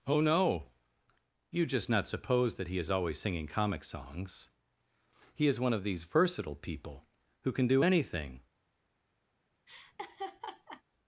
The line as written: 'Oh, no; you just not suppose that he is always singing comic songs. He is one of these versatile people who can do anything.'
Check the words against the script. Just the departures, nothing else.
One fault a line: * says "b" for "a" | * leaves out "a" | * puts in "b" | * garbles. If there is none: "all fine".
all fine